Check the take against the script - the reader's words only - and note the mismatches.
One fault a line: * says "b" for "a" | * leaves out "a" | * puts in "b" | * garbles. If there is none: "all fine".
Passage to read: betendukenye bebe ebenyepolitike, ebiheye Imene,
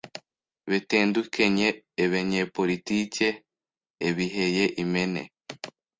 * leaves out "bebe"